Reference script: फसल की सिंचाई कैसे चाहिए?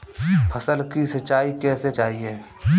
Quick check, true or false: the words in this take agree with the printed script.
true